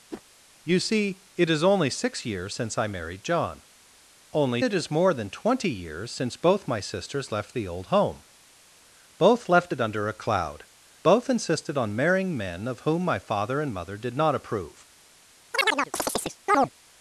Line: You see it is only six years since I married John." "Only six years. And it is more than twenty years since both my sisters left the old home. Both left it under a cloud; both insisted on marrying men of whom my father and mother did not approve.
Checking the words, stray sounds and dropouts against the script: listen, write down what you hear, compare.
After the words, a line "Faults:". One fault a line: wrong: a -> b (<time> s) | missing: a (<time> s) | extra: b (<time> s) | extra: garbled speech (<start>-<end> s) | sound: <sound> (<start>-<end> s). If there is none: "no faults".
You see it is only six years since I married John." "Only it is more than twenty years since both my sisters left the old home. Both left it under a cloud; both insisted on marrying men of whom my father and mother did not approve.
Faults:
sound: whoosh (0.1-0.2 s)
missing: six years And (4.6 s)
sound: chirp (15.5-16.7 s)